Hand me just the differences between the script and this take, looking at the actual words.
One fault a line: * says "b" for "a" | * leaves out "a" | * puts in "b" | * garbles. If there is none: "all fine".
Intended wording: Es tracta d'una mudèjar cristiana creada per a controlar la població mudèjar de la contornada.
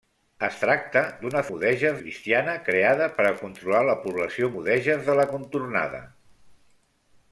all fine